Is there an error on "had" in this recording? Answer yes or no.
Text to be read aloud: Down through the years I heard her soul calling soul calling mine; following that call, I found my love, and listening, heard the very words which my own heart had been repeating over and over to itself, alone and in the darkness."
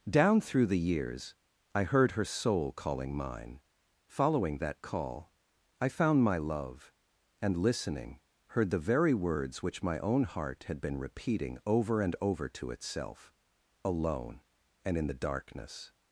no